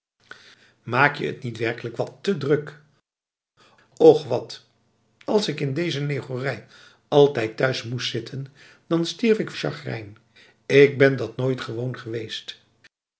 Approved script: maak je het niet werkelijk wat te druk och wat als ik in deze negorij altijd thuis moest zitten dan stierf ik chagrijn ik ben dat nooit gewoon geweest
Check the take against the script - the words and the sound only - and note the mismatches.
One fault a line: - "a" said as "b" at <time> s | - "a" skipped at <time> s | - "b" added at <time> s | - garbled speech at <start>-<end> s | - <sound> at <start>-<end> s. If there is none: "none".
none